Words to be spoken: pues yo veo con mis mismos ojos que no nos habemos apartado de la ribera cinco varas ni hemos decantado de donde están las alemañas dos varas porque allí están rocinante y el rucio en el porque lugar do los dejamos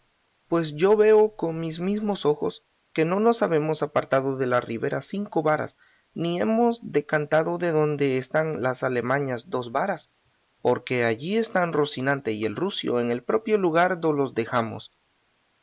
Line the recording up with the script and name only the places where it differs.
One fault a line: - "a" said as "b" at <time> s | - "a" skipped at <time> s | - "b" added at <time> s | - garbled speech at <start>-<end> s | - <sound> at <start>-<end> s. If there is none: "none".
- "porque" said as "propio" at 13.2 s